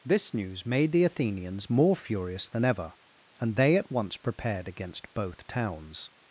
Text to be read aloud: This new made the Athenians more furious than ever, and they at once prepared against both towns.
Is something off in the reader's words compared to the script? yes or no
yes